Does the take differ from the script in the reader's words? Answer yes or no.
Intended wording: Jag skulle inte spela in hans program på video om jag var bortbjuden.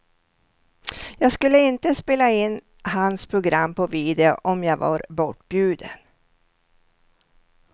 no